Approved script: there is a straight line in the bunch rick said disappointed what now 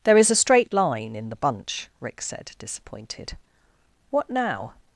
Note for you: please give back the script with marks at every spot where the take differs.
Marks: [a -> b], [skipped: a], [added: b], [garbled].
there is a straight line in the bunch rick said disappointed what now